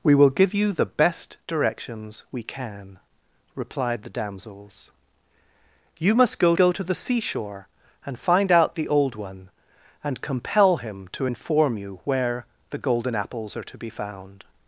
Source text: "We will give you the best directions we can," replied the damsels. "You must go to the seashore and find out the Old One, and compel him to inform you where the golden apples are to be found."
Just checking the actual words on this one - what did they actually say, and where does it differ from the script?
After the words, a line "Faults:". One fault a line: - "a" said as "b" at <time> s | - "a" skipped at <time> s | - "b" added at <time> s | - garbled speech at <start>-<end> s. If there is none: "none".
"We will give you the best directions we can," replied the damsels. "You must go go to the seashore and find out the Old One, and compel him to inform you where the golden apples are to be found."
Faults:
- "go" added at 6.6 s